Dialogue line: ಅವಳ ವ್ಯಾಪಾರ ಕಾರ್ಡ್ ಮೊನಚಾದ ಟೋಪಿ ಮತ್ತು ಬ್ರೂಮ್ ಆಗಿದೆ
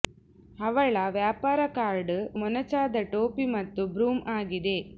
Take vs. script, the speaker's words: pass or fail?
pass